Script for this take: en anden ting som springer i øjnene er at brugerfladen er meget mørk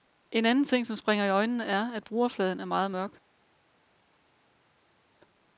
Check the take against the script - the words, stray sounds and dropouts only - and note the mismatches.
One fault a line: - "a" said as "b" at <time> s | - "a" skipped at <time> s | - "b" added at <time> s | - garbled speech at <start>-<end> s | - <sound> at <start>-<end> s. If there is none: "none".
none